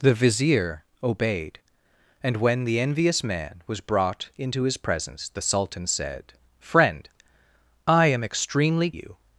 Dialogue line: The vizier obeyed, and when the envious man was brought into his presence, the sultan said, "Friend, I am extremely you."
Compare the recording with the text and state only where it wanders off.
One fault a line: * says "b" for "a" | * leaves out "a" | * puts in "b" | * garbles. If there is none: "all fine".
all fine